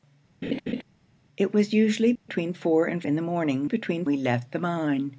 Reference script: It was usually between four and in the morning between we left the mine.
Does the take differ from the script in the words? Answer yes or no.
no